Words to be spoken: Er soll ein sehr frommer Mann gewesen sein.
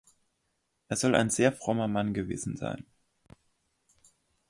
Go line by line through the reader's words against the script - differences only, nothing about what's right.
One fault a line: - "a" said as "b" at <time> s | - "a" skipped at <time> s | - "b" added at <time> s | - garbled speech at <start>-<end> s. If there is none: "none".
none